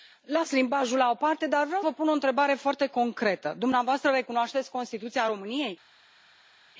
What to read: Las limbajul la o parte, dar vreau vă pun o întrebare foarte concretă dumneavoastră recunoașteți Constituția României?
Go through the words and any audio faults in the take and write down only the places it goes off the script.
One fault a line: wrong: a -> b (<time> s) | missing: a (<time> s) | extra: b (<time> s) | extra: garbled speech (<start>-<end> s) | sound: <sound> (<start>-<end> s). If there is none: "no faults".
no faults